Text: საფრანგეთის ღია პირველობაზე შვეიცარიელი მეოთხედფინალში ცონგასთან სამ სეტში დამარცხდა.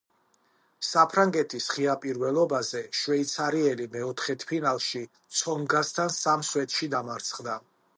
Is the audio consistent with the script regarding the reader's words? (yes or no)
yes